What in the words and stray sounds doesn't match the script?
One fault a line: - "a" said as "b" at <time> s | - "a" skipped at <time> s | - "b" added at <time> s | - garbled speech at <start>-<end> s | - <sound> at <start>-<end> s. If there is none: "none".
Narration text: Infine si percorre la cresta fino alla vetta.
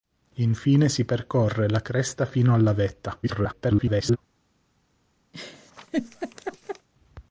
- garbled speech at 3.2-4.2 s
- laugh at 5.3-6.9 s